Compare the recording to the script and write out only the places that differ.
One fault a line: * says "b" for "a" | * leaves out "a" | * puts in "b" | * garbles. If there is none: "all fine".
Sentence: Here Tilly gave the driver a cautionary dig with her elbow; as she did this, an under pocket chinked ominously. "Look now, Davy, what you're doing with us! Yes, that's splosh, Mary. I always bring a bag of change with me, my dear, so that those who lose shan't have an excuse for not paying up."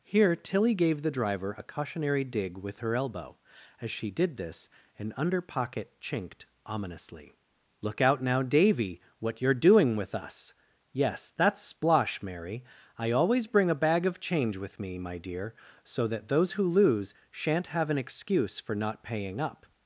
* puts in "out"